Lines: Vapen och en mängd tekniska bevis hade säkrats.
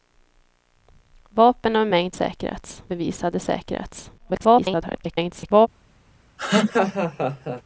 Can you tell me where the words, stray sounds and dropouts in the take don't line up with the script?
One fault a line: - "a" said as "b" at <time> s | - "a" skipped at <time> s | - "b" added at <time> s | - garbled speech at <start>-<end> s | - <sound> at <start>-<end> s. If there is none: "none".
- "tekniska" said as "säkrats" at 2.1 s
- garbled speech at 4.2-5.7 s
- laugh at 6.4-7.6 s